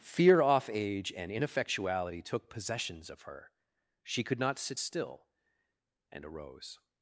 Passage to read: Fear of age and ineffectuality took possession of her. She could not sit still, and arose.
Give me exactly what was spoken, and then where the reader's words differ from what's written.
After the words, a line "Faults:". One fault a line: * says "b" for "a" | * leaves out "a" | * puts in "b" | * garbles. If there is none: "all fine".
Fear off age and ineffectuality took possessions of her. She could not sit still, and arose.
Faults:
* says "off" for "of"
* says "possessions" for "possession"